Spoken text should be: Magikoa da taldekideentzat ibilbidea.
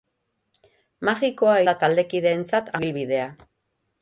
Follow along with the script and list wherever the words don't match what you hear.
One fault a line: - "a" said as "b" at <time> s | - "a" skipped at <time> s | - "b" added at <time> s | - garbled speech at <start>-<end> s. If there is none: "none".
none